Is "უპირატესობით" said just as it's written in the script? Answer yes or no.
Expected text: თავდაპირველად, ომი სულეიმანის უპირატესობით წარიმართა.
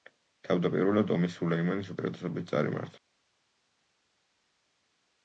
yes